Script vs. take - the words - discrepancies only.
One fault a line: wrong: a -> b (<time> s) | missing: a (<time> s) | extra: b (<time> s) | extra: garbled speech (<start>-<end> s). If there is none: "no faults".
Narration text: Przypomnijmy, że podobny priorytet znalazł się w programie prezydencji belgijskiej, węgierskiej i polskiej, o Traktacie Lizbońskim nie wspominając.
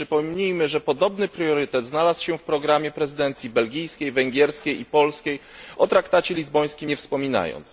no faults